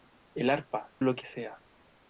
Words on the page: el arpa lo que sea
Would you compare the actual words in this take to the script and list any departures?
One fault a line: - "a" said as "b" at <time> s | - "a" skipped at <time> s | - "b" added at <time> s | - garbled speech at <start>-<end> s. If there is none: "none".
none